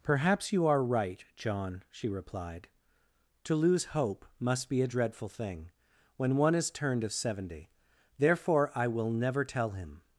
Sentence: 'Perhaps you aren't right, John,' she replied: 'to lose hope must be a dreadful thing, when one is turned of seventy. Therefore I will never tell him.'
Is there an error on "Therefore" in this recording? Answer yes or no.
no